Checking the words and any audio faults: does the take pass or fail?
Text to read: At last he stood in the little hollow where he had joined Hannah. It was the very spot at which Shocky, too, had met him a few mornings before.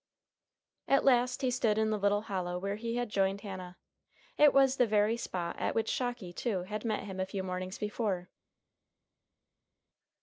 pass